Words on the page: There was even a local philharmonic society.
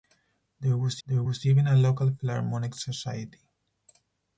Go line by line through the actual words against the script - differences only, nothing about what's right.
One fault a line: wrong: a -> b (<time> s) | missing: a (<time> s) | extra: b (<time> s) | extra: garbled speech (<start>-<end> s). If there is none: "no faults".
extra: there was (1.0 s)